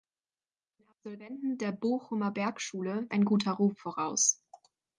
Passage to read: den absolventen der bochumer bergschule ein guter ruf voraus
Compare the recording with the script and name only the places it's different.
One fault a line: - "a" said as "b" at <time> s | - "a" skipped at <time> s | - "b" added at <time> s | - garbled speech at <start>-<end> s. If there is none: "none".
none